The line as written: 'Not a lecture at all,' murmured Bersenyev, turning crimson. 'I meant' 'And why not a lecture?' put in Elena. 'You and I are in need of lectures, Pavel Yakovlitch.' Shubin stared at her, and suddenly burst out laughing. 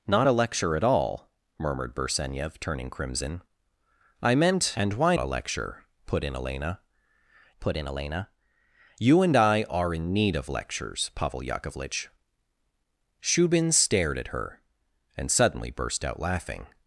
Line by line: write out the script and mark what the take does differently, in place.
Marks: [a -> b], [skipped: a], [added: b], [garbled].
'Not a lecture at all,' murmured Bersenyev, turning crimson. 'I meant' 'And why [skipped: not] a lecture?' put in Elena. [added: put in Elena] 'You and I are in need of lectures, Pavel Yakovlitch.' Shubin stared at her, and suddenly burst out laughing.